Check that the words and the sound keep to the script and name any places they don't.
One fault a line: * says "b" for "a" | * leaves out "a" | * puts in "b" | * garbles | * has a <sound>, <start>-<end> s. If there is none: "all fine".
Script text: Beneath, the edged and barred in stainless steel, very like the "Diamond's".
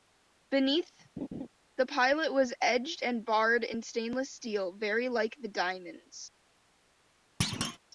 * has a laugh, 1.2-1.5 s
* puts in "pilot was"
* has a thud, 7.4-7.8 s